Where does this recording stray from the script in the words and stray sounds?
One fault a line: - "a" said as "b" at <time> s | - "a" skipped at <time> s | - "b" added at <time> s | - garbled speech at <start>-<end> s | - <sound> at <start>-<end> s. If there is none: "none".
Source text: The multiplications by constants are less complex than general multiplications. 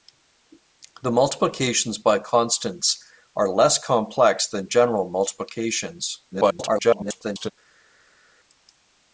- garbled speech at 6.3-7.5 s